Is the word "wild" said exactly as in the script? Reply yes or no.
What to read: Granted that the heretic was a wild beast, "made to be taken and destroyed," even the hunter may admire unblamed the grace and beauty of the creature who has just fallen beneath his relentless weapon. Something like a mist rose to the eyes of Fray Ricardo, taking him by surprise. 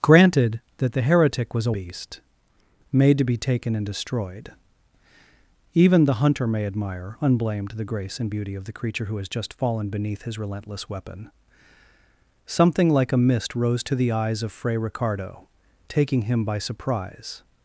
no